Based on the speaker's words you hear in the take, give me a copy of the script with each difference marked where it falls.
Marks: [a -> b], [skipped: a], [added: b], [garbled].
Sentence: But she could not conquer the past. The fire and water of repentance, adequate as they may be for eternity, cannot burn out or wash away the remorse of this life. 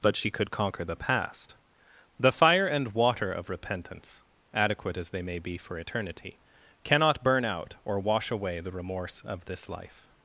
But she could [skipped: not] conquer the past. The fire and water of repentance, adequate as they may be for eternity, cannot burn out or wash away the remorse of this life.